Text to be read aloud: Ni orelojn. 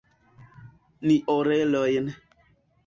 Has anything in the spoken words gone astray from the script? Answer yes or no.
no